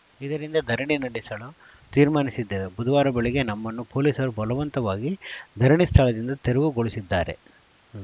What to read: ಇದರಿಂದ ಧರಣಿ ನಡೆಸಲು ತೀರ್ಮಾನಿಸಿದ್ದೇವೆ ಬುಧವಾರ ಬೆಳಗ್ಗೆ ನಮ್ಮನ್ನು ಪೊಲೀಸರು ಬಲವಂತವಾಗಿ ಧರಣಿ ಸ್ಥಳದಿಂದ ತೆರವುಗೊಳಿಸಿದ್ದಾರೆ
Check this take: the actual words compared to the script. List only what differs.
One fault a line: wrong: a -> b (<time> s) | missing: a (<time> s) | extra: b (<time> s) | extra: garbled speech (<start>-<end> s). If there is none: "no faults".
no faults